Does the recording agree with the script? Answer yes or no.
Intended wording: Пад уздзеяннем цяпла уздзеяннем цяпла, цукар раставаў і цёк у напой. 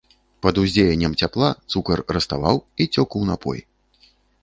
no